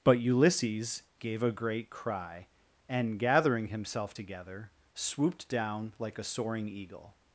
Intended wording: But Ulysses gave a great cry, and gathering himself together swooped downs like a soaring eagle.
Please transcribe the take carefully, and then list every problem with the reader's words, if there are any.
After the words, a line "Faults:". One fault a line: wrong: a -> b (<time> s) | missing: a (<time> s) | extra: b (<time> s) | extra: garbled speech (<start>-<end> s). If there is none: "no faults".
But Ulysses gave a great cry, and gathering himself together swooped down like a soaring eagle.
Faults:
wrong: downs -> down (5.5 s)